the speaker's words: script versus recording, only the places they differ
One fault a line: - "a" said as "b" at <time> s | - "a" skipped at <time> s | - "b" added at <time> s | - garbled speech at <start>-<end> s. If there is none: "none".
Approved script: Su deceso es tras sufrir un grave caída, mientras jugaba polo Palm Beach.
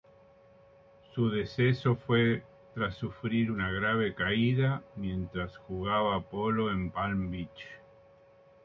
- "es" said as "fue" at 1.9 s
- "un" said as "una" at 3.5 s
- "en" added at 6.7 s